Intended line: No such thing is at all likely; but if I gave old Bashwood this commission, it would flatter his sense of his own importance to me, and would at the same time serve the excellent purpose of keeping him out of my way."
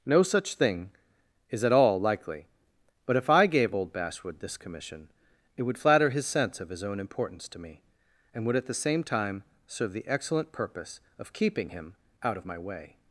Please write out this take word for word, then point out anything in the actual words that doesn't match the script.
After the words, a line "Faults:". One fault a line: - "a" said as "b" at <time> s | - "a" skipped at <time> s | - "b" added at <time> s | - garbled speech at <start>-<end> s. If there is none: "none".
No such thing is at all likely; but if I gave old Bashwood this commission, it would flatter his sense of his own importance to me, and would at the same time serve the excellent purpose of keeping him out of my way."
Faults:
none